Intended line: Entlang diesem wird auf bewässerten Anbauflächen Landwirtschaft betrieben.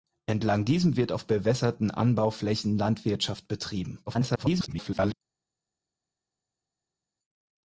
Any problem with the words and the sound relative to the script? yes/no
yes